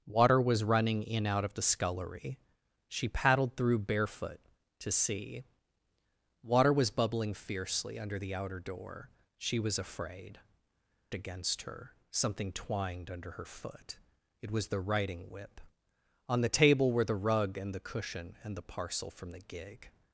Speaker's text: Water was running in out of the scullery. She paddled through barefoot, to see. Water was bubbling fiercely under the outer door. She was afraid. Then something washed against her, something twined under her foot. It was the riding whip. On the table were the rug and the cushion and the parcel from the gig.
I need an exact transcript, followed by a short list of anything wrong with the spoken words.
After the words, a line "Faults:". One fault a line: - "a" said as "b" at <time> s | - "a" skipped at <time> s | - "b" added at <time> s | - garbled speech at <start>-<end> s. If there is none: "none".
Water was running in out of the scullery. She paddled through barefoot, to see. Water was bubbling fiercely under the outer door. She was afraid. Against her, something twined under her foot. It was the riding whip. On the table were the rug and the cushion and the parcel from the gig.
Faults:
- "Then something washed" skipped at 10.4 s